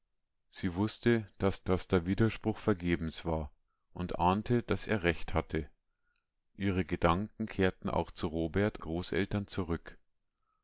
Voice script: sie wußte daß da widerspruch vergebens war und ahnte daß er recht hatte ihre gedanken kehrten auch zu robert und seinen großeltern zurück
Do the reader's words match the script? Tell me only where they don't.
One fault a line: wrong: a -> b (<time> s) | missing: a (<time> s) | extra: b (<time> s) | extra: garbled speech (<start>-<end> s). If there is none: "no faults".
extra: daß (1.6 s)
missing: und seinen (8.8 s)